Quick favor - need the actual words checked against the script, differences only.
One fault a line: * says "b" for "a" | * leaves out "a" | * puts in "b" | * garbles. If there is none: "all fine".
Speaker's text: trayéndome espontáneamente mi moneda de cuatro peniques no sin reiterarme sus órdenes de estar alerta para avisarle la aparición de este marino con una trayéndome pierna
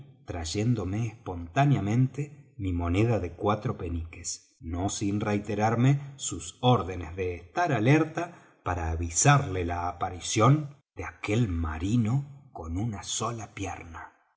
* says "aquel" for "este"
* says "sola" for "trayéndome"